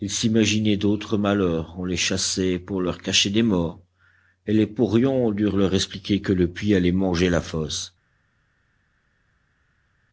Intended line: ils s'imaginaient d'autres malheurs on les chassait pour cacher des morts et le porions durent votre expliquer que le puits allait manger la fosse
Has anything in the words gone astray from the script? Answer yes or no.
yes